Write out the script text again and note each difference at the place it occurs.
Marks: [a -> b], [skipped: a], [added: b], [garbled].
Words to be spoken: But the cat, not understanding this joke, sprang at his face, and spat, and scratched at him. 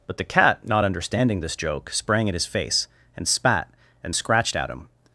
But the cat, not understanding this joke, sprang at his face, and spat, and scratched at him.